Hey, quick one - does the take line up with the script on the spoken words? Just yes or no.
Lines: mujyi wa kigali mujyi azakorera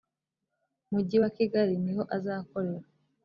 no